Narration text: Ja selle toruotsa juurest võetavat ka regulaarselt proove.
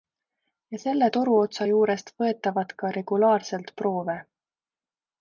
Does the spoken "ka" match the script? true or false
true